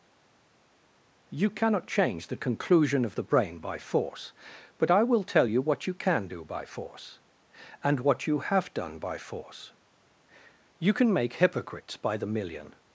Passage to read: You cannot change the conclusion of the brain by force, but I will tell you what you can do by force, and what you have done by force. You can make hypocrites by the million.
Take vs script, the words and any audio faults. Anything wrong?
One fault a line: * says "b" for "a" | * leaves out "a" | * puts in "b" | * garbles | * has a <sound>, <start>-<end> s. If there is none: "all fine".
all fine